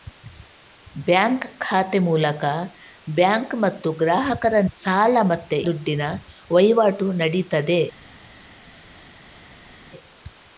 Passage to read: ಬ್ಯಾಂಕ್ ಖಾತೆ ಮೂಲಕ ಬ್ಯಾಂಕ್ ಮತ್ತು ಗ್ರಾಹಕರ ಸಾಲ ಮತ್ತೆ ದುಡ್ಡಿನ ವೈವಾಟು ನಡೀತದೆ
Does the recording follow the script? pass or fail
pass